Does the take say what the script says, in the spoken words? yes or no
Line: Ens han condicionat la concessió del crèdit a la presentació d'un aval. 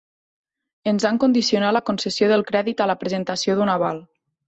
yes